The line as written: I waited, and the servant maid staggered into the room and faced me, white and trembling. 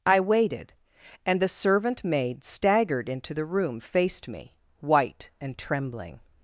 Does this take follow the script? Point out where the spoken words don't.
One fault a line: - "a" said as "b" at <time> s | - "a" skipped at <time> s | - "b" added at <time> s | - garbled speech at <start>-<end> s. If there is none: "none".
- "and" skipped at 3.8 s